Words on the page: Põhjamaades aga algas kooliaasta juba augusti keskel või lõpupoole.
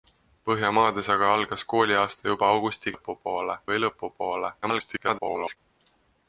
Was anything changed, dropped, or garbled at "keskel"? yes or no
yes